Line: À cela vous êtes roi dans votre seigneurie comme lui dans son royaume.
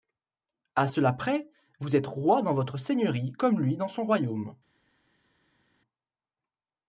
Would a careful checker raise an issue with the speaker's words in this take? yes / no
yes